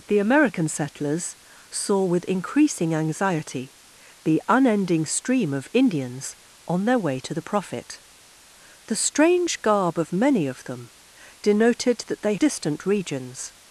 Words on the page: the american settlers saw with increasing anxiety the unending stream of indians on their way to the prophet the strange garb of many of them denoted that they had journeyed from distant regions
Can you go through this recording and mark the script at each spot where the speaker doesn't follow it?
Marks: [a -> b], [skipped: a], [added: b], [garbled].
the american settlers saw with increasing anxiety the unending stream of indians on their way to the prophet the strange garb of many of them denoted that they [skipped: had journeyed from] distant regions